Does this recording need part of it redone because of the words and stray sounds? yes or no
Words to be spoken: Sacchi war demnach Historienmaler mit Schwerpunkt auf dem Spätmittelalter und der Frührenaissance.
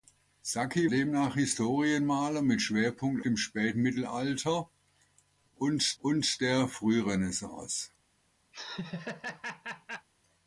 yes